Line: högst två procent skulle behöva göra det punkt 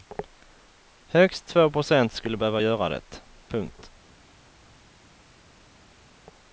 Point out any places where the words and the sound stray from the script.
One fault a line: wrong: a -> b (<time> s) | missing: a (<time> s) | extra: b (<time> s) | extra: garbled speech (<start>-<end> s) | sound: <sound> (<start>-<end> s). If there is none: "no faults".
no faults